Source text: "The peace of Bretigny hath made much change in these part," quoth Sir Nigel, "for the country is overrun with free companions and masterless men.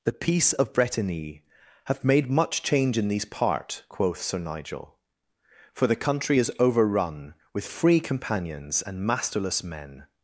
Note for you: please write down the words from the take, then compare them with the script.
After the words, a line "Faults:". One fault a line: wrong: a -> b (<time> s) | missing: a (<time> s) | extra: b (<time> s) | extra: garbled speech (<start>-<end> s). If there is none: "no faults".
"The peace of Bretigny hath made much change in these part," quoth Sir Nigel, "for the country is overrun with free companions and masterless men.
Faults:
no faults